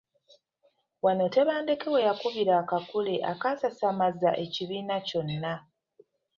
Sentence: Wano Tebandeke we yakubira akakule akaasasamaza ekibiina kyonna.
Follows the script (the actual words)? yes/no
yes